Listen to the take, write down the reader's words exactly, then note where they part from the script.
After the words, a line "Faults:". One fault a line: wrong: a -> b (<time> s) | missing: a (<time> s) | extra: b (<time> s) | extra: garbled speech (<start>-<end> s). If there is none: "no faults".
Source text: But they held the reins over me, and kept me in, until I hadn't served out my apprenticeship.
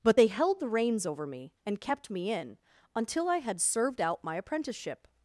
But they held the reins over me, and kept me in, until I had served out my apprenticeship.
Faults:
wrong: hadn't -> had (3.4 s)